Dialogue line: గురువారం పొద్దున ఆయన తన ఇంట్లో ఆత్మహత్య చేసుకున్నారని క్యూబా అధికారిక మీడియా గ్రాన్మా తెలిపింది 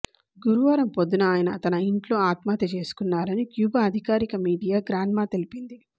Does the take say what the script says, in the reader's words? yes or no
yes